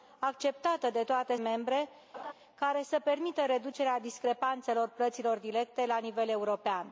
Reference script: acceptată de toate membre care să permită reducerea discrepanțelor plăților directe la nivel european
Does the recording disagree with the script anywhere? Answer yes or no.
no